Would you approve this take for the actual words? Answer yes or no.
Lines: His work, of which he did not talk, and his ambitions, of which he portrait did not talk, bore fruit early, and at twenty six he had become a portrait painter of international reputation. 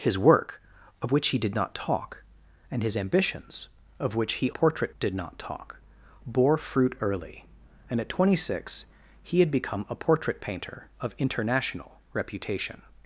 yes